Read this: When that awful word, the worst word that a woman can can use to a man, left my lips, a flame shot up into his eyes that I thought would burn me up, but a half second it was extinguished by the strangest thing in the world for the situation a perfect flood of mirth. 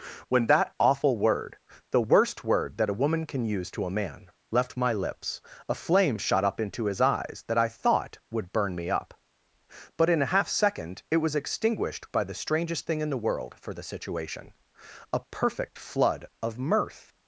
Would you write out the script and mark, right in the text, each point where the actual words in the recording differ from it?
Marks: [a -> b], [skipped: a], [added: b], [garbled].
When that awful word, the worst word that a woman can [skipped: can] use to a man, left my lips, a flame shot up into his eyes that I thought would burn me up, but [added: in] a half second it was extinguished by the strangest thing in the world for the situation a perfect flood of mirth.